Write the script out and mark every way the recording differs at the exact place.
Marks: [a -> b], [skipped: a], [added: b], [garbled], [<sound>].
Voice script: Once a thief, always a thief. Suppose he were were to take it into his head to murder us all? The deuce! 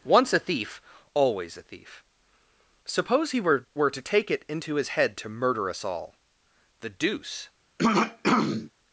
Once a thief, always a thief. Suppose he were were to take it into his head to murder us all? The deuce! [throat clearing]